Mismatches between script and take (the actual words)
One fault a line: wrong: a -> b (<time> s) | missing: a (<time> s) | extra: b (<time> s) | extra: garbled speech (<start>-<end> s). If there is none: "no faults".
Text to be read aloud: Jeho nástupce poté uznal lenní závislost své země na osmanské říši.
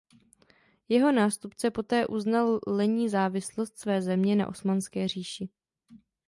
no faults